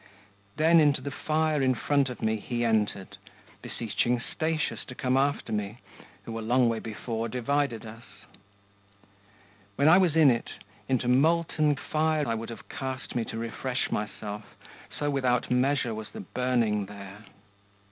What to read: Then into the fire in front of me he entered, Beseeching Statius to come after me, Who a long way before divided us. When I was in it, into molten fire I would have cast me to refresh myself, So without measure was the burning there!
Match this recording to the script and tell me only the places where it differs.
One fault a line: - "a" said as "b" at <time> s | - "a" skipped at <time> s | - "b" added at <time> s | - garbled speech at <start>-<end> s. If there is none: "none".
none